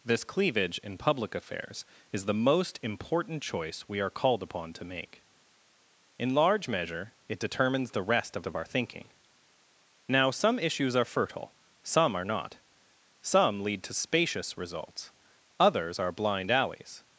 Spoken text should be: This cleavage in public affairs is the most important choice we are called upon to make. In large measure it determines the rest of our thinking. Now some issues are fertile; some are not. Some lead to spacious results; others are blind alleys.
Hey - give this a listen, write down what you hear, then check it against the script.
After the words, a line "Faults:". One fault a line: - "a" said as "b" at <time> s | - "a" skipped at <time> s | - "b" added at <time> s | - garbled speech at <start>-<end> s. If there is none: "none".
This cleavage in public affairs is the most important choice we are called upon to make. In large measure it determines the rest of of our thinking. Now some issues are fertile; some are not. Some lead to spacious results; others are blind alleys.
Faults:
- "of" added at 8.5 s